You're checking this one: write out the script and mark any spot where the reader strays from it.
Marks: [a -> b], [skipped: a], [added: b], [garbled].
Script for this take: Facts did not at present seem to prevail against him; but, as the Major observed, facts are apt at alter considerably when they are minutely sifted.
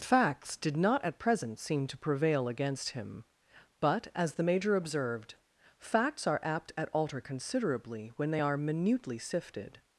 Facts did not at present seem to prevail against him; but, as the Major observed, facts are apt at alter considerably when they are minutely sifted.